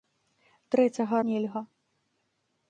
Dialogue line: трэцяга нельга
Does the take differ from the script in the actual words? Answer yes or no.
no